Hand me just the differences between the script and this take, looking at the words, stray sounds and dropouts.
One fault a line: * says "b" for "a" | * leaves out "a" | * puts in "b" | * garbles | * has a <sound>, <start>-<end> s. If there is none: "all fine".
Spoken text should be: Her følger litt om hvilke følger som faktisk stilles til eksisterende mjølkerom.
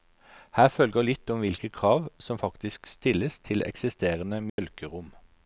* says "krav" for "følger"
* has a dropout, 4.5-4.6 s